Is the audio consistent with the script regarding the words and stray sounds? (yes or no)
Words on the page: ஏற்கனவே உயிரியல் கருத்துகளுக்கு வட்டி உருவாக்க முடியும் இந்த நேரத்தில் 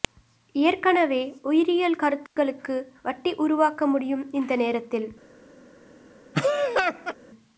no